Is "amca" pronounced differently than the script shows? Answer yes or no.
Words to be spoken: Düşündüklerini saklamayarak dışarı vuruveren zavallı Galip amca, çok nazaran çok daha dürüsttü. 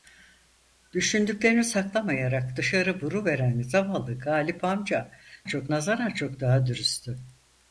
no